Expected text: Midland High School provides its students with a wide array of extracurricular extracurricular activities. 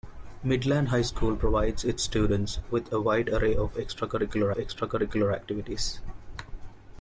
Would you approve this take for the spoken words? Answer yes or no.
yes